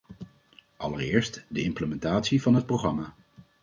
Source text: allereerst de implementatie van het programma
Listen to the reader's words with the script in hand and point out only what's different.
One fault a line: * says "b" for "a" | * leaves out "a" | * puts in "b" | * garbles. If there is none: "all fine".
all fine